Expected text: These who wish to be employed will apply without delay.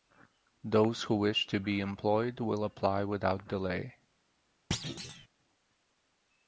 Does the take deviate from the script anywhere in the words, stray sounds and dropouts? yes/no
yes